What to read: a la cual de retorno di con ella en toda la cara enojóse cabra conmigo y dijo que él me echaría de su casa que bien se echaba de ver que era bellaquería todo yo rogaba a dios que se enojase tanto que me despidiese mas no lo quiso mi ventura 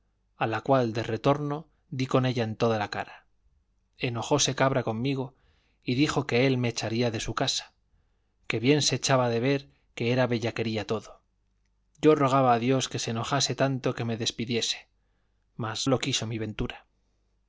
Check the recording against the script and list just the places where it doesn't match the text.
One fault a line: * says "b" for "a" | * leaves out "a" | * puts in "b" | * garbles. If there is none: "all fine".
* leaves out "no"